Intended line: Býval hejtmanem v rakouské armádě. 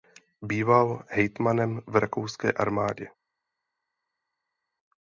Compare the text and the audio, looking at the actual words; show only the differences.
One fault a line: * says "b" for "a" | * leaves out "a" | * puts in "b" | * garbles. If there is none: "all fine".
all fine